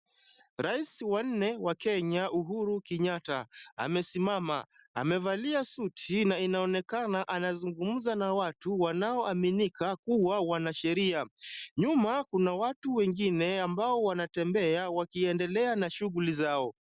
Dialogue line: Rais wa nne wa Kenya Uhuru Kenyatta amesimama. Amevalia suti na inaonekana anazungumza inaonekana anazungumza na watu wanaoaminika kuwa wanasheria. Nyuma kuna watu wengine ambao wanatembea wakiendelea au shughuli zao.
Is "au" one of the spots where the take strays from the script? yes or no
yes